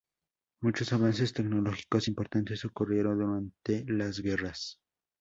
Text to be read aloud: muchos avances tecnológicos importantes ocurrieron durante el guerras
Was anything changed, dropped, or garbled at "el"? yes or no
yes